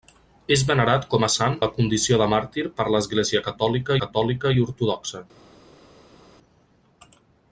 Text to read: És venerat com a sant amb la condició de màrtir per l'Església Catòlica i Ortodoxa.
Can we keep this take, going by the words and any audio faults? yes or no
no